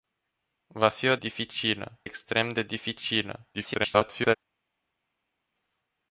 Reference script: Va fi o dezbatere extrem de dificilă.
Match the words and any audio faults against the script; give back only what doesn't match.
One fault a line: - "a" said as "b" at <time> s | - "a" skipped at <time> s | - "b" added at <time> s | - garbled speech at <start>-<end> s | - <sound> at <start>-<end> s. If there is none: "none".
- "dezbatere" said as "dificilă" at 1.1 s
- garbled speech at 3.5-4.4 s